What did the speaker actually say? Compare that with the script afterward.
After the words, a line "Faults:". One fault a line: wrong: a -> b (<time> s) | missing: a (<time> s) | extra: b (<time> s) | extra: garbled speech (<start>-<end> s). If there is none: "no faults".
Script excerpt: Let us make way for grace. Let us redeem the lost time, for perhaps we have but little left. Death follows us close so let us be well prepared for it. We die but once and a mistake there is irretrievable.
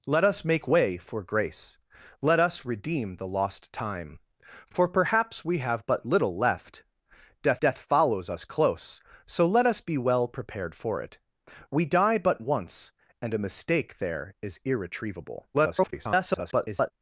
Let us make way for grace. Let us redeem the lost time, for perhaps we have but little left. Death death follows us close so let us be well prepared for it. We die but once and a mistake there is irretrievable. [garbled]
Faults:
extra: death (7.6 s)
extra: garbled speech (15.5-16.9 s)